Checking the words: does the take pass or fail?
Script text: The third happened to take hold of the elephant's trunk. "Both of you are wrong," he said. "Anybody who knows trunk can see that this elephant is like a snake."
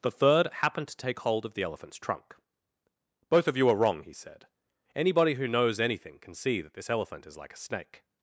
fail